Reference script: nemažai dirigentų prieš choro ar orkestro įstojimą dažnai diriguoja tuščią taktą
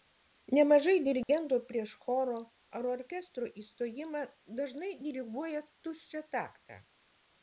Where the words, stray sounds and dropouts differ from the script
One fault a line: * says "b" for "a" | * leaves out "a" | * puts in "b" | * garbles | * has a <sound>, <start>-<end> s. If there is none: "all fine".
* has a dropout, 1.2-1.3 s